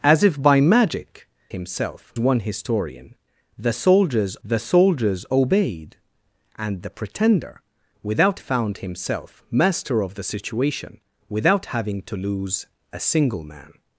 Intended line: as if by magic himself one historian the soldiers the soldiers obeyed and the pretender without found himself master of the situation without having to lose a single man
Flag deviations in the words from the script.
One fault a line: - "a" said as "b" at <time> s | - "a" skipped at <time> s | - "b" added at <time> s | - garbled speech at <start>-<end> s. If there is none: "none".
none